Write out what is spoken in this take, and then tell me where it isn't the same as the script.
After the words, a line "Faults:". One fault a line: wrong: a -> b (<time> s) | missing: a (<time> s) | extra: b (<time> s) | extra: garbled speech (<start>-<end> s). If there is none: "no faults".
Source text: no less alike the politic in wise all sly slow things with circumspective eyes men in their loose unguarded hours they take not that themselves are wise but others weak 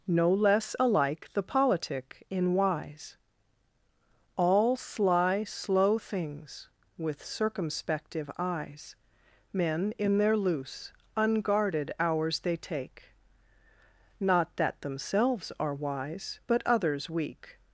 no less alike the politic in wise all sly slow things with circumspective eyes men in their loose unguarded hours they take not that themselves are wise but others weak
Faults:
no faults